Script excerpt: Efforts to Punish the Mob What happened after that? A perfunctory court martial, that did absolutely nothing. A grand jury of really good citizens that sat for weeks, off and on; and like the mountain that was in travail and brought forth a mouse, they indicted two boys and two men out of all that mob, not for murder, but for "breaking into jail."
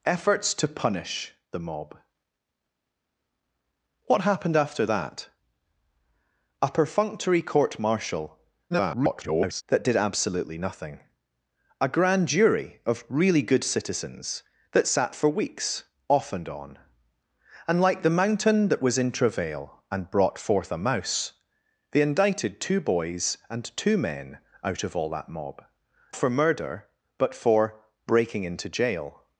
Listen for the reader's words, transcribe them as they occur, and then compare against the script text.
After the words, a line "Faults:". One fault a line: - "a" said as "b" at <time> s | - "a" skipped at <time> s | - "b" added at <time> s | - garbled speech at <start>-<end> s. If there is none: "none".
Efforts to Punish the Mob What happened after that? A perfunctory court martial, [garbled] that did absolutely nothing. A grand jury of really good citizens that sat for weeks, off and on; and like the mountain that was in travail and brought forth a mouse, they indicted two boys and two men out of all that mob, for murder, but for "breaking into jail."
Faults:
- garbled speech at 8.7-9.6 s
- "not" skipped at 25.6 s